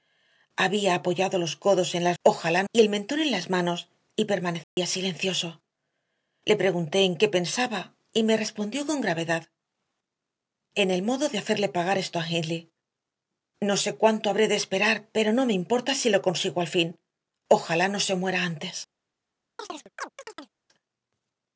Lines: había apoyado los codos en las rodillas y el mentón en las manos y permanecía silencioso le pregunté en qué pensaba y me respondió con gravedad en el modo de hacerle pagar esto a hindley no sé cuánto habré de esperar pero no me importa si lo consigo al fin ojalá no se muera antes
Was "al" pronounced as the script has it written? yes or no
yes